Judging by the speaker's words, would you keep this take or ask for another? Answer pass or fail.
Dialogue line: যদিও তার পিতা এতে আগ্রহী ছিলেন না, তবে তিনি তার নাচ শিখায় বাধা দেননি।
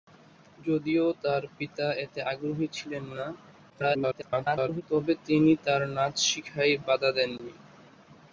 fail